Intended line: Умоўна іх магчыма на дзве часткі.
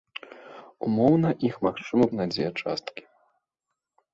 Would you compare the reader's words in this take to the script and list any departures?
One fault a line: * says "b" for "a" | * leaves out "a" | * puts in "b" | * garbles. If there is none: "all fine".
all fine